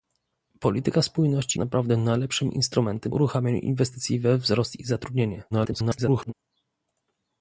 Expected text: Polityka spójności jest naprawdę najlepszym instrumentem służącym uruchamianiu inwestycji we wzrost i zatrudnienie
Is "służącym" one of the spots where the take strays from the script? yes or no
yes